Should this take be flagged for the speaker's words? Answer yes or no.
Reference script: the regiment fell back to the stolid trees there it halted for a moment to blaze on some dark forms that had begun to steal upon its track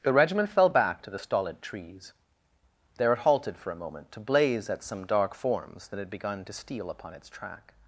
yes